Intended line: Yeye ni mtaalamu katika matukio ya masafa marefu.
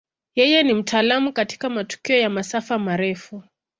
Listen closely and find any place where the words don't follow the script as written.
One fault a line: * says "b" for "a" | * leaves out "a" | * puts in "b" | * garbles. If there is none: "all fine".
all fine